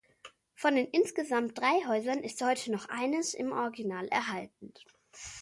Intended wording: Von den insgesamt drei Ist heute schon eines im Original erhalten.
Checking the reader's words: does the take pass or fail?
fail